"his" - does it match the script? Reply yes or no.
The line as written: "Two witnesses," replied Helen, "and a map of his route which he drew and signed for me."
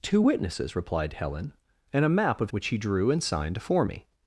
no